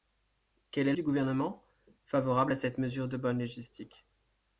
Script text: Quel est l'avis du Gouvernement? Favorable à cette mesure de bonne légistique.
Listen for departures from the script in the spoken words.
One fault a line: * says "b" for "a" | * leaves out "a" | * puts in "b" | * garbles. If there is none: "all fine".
* leaves out "l'avis"